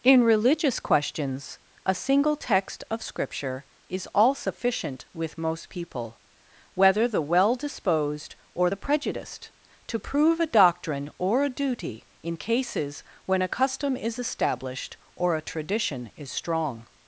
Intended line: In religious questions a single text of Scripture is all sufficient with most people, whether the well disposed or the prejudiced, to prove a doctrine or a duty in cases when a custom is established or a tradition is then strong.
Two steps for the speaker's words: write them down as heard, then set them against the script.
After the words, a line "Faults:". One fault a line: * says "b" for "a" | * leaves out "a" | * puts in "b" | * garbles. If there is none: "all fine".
In religious questions a single text of Scripture is all sufficient with most people, whether the well disposed or the prejudiced, to prove a doctrine or a duty in cases when a custom is established or a tradition is strong.
Faults:
* leaves out "then"